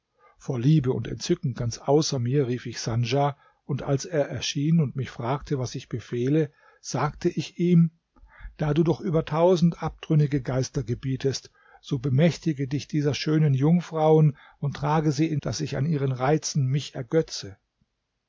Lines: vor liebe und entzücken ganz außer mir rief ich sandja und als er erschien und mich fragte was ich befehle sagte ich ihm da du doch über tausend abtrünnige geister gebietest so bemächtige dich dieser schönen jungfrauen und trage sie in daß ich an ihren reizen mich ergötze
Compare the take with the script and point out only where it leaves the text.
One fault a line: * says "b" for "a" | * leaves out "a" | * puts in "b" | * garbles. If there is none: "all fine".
all fine